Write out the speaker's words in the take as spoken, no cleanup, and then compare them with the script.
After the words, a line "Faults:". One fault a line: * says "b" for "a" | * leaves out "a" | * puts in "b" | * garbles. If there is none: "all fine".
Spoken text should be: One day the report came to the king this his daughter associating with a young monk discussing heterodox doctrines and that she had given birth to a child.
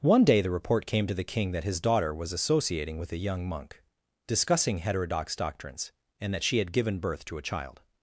One day the report came to the king that his daughter was associating with a young monk discussing heterodox doctrines and that she had given birth to a child.
Faults:
* says "that" for "this"
* puts in "was"